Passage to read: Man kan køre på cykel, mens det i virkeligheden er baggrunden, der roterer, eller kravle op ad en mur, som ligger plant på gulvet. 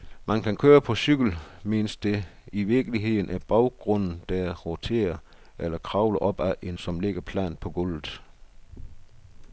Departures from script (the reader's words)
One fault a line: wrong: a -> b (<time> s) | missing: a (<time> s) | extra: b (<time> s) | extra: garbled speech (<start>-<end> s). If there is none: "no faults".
missing: mur (6.8 s)